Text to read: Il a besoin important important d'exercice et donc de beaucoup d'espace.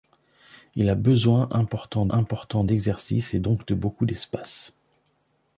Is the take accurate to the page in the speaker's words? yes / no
yes